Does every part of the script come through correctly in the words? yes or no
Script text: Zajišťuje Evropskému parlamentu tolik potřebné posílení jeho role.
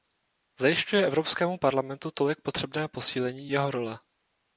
yes